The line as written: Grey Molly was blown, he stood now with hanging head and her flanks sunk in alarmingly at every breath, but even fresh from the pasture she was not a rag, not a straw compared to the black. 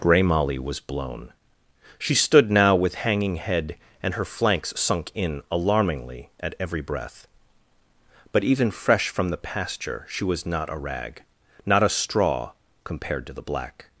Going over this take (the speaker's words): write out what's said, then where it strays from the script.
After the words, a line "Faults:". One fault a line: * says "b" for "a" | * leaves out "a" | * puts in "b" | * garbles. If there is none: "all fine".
Grey Molly was blown, she stood now with hanging head and her flanks sunk in alarmingly at every breath, but even fresh from the pasture she was not a rag, not a straw compared to the black.
Faults:
* says "she" for "he"